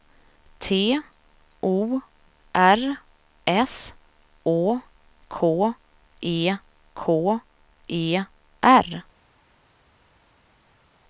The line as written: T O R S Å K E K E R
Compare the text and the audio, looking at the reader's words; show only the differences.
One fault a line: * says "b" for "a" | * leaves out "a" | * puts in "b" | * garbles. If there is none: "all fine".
all fine